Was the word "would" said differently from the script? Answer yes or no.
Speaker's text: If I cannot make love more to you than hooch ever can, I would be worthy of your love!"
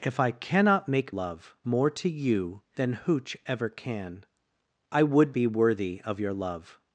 no